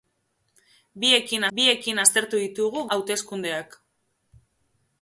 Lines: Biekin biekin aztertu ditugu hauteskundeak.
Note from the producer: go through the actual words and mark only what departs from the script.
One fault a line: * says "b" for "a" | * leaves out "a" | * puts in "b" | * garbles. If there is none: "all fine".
all fine